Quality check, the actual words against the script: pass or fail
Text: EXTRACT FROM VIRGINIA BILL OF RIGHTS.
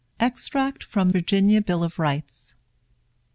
pass